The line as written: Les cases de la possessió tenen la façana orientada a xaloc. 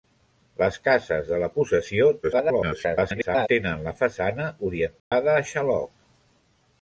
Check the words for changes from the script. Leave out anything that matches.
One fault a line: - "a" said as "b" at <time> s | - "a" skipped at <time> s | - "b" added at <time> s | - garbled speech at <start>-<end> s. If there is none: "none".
- garbled speech at 2.2-3.5 s